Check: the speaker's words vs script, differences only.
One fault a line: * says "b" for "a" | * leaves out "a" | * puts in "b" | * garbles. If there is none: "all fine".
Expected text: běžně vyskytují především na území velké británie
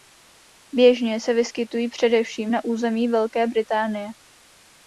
* puts in "se"